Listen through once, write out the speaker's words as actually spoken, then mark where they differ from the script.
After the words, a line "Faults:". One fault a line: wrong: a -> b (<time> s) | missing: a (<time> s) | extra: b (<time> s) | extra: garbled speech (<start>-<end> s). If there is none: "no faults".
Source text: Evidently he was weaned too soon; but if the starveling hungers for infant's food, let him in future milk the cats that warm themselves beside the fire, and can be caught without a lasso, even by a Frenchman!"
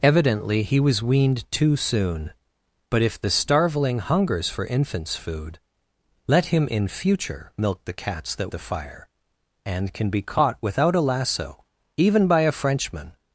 Evidently he was weaned too soon; but if the starveling hungers for infant's food, let him in future milk the cats that the fire, and can be caught without a lasso, even by a Frenchman!"
Faults:
missing: warm themselves beside (8.5 s)